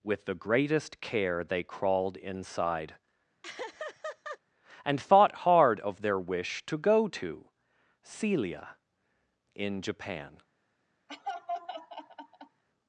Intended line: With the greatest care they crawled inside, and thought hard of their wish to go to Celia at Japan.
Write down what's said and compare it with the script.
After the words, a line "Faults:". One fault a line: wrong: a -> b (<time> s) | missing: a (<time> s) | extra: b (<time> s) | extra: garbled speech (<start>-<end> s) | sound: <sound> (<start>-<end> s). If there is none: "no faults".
With the greatest care they crawled inside, and thought hard of their wish to go to Celia in Japan.
Faults:
sound: laugh (3.4-4.4 s)
wrong: at -> in (9.6 s)
sound: laugh (11.1-12.6 s)